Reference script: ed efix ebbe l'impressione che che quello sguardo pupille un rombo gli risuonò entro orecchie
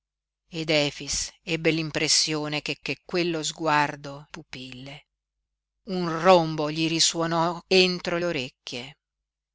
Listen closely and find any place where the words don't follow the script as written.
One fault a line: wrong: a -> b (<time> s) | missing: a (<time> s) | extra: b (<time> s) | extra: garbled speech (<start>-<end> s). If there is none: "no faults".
no faults